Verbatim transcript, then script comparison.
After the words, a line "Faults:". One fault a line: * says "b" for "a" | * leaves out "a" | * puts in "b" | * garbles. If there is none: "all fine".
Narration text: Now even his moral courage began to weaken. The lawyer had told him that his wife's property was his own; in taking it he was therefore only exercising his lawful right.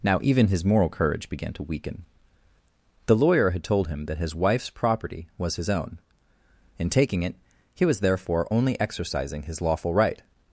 Now even his moral courage began to weaken. The lawyer had told him that his wife's property was his own; in taking it he was therefore only exercising his lawful right.
Faults:
all fine